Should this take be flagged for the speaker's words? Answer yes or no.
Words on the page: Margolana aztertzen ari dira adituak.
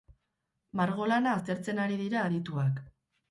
no